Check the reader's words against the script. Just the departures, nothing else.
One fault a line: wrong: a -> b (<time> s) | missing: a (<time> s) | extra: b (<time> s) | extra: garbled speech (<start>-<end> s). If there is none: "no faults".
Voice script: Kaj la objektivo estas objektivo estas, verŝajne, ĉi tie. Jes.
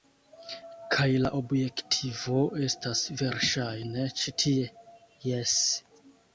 missing: objektivo estas (3.0 s)